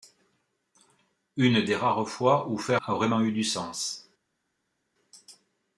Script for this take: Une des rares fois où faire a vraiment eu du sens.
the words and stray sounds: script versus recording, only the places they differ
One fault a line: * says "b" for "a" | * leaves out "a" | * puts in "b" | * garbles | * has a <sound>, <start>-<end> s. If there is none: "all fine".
all fine